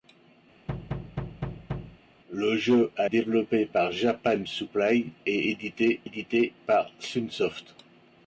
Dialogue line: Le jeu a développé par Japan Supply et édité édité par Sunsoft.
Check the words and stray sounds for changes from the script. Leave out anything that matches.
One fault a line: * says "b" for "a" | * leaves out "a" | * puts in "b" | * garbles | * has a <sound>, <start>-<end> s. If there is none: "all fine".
* has a thud, 0.7-2.0 s